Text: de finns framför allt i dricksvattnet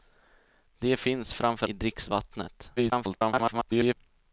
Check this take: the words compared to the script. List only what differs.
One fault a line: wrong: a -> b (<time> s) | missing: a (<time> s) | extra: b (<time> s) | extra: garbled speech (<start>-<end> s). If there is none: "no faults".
missing: allt (1.7 s)
extra: garbled speech (2.8-3.9 s)